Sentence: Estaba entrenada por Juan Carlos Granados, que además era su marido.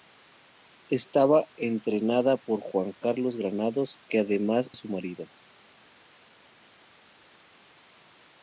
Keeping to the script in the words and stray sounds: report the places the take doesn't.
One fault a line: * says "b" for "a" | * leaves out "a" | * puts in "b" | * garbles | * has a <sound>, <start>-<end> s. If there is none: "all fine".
* leaves out "era"